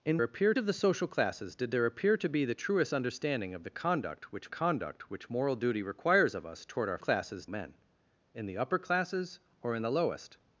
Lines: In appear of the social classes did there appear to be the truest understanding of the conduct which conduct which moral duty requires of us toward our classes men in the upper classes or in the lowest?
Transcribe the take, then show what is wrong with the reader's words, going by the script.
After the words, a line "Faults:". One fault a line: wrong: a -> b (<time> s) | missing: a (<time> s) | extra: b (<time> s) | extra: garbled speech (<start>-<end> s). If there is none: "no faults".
In appear of the social classes did there appear to be the truest understanding of the conduct which conduct which moral duty requires of us toward our classes men in the upper classes or in the lowest?
Faults:
no faults